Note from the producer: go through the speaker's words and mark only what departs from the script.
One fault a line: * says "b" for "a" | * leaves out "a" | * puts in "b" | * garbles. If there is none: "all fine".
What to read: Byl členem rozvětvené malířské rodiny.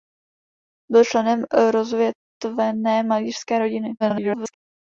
* garbles